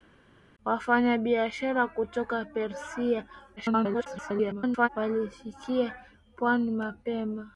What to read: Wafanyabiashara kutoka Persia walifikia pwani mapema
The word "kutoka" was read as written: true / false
true